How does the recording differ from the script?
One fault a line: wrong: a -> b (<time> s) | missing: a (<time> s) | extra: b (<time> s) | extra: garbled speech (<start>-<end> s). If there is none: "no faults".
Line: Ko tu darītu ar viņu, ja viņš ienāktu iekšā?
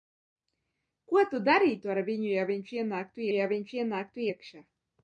extra: ja viņš ienāktu (3.4 s)